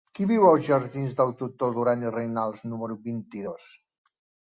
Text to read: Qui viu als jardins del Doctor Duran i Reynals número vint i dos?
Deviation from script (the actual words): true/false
false